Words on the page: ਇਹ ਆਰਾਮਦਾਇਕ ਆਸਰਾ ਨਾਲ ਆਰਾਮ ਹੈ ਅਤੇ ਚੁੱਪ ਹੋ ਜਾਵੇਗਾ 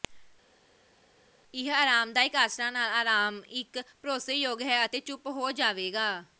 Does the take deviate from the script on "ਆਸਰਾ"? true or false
false